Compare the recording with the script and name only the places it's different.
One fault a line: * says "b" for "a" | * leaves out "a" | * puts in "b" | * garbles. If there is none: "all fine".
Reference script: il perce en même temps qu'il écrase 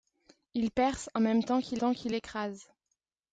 * puts in "temps qu'il"